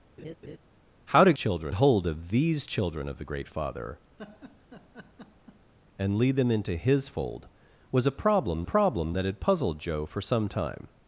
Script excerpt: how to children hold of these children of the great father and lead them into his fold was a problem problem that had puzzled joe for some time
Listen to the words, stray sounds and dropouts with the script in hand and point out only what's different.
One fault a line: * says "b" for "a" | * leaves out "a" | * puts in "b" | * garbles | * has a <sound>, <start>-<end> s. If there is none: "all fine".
* has a laugh, 0.2-0.6 s
* has a laugh, 4.2-5.7 s